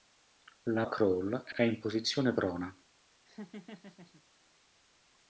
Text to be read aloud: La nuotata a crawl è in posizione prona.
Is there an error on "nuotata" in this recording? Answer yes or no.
yes